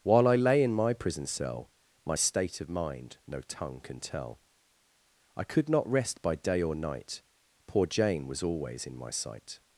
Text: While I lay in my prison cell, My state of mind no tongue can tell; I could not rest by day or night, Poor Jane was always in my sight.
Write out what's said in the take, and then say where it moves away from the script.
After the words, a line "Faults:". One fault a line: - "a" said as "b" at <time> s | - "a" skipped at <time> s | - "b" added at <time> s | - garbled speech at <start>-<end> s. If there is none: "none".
While I lay in my prison cell, My state of mind no tongue can tell; I could not rest by day or night, Poor Jane was always in my sight.
Faults:
none